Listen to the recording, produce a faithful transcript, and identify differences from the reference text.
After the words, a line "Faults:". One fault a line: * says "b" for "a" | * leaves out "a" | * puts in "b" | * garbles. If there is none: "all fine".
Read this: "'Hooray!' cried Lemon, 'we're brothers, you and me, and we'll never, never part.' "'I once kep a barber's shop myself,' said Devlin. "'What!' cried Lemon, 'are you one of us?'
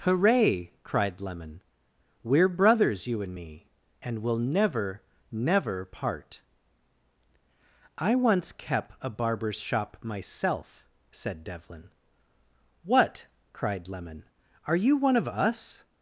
"'Hooray!' cried Lemon, 'we're brothers, you and me, and we'll never, never part.' "'I once kep a barber's shop myself,' said Devlin. "'What!' cried Lemon, 'are you one of us?'
Faults:
all fine